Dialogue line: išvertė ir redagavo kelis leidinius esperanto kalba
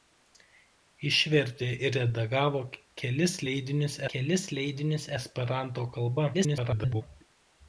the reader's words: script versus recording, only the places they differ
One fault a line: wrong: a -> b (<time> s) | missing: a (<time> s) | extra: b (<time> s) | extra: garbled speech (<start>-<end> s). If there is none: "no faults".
extra: kelis leidinius (4.1 s)
extra: garbled speech (6.3-7.0 s)